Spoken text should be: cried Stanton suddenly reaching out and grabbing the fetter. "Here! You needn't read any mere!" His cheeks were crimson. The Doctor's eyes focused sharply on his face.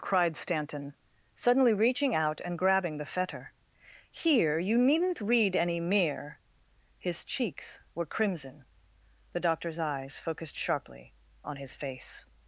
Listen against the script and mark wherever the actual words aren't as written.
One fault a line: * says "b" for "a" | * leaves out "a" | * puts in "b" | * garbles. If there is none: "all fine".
all fine